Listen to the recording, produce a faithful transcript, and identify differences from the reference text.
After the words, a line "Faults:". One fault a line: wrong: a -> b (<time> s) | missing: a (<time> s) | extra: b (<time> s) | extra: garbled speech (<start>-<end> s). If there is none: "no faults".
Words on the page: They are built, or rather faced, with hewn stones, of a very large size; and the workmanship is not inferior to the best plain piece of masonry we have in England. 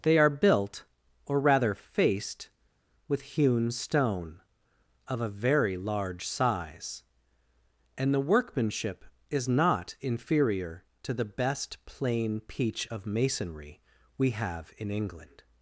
They are built, or rather faced, with hewn stone, of a very large size; and the workmanship is not inferior to the best plain peach of masonry we have in England.
Faults:
wrong: stones -> stone (3.7 s)
wrong: piece -> peach (12.4 s)